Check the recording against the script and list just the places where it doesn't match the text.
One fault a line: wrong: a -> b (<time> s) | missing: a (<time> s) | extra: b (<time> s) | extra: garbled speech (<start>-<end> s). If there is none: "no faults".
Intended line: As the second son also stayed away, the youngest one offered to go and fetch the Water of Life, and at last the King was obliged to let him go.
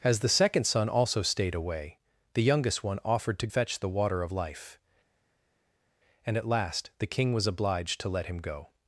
missing: go and (3.5 s)